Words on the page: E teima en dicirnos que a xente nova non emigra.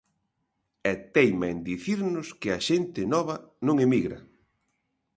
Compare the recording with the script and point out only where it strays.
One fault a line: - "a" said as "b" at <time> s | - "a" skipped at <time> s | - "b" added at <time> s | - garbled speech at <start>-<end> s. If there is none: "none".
none